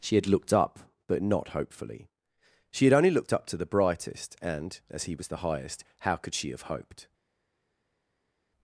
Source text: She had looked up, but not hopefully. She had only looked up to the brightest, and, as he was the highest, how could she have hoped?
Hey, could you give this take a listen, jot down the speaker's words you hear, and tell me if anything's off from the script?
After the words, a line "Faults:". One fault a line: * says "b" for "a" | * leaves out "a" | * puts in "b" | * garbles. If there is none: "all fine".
She had looked up, but not hopefully. She had only looked up to the brightest, and, as he was the highest, how could she have hoped?
Faults:
all fine